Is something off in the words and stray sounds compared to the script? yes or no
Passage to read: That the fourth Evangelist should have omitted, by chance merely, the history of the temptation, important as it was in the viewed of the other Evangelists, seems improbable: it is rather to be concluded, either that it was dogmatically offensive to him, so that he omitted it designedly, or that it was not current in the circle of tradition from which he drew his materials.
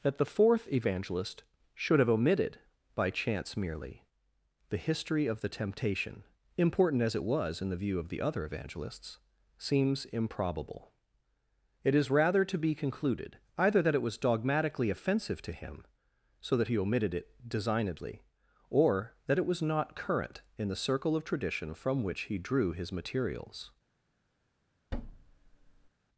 yes